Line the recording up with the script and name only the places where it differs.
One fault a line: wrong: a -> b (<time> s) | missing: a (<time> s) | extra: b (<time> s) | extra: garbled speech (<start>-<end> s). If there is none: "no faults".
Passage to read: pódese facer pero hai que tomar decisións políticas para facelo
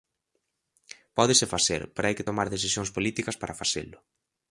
no faults